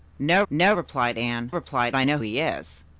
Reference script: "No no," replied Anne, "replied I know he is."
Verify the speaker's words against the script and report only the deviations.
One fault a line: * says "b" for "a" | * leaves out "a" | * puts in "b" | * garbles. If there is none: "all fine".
all fine